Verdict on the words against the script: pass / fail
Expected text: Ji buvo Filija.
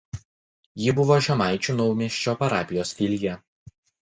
fail